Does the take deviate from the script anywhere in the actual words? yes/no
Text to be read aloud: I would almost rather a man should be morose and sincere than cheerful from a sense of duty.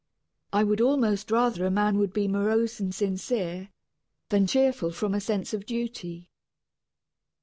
yes